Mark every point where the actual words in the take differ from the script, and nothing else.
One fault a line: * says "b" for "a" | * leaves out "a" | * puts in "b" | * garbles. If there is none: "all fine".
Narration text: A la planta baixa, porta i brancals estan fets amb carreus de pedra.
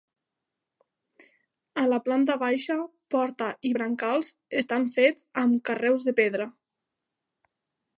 all fine